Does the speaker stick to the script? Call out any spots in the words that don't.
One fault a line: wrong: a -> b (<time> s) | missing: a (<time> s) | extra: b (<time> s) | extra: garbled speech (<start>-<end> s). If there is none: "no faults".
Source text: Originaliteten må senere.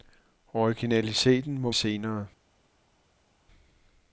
no faults